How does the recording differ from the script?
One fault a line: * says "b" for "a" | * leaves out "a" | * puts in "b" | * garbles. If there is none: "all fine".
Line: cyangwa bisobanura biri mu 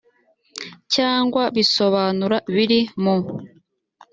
all fine